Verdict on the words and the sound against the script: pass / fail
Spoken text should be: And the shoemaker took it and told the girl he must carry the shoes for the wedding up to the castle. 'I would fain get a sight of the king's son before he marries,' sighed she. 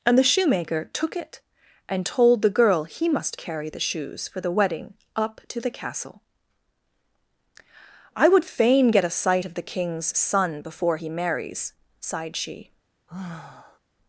fail